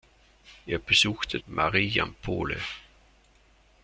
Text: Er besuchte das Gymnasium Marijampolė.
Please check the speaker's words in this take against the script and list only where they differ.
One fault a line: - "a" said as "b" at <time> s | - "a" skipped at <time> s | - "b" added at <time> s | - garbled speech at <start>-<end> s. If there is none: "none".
- "das Gymnasium" skipped at 1.4 s